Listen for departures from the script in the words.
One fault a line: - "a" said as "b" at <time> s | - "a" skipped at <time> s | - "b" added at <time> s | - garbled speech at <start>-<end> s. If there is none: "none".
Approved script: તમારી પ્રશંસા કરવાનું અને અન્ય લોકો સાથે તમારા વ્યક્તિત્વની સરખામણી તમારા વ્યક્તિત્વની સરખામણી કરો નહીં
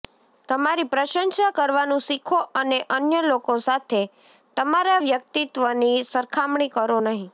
- "શીખો" added at 2.0 s
- "તમારા વ્યક્તિત્વની સરખામણી" skipped at 6.7 s